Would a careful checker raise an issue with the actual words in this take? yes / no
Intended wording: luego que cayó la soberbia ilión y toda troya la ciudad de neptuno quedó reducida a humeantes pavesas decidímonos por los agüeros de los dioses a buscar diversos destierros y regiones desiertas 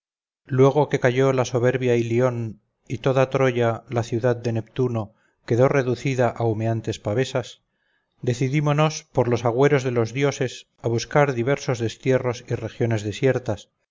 no